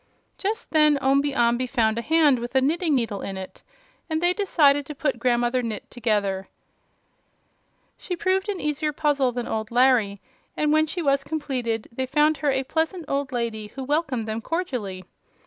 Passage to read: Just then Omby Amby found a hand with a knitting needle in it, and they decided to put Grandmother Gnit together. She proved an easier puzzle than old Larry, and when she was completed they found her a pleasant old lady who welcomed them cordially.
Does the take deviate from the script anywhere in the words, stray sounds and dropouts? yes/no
no